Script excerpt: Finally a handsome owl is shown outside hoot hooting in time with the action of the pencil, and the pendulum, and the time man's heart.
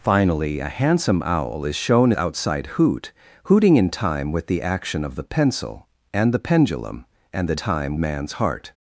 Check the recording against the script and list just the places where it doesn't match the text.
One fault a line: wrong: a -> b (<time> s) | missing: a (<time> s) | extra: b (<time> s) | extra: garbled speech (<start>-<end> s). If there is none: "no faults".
no faults